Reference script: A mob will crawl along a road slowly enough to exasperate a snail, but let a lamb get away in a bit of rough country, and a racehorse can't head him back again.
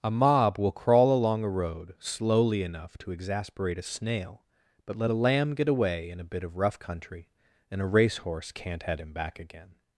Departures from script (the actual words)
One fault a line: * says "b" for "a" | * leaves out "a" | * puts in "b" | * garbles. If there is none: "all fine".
all fine